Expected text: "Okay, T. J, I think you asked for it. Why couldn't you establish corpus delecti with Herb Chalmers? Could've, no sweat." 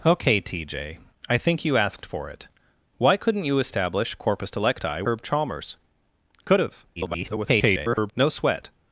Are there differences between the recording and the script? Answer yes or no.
yes